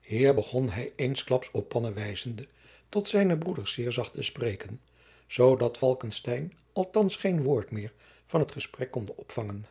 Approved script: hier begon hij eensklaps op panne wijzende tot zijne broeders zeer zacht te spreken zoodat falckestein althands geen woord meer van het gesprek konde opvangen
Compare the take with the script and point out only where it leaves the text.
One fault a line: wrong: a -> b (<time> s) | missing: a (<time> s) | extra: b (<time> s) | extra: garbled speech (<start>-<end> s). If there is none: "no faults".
no faults